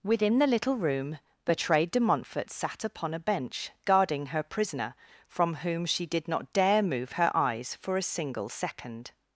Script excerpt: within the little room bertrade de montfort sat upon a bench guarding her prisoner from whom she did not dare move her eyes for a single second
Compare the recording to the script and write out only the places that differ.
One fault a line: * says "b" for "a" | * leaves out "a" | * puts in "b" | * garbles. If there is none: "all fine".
all fine